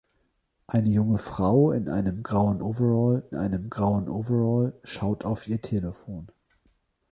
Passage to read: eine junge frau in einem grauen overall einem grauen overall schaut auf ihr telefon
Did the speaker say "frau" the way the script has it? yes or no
yes